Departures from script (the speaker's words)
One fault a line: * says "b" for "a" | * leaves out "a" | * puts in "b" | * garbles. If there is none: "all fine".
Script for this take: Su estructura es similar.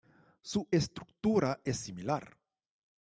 all fine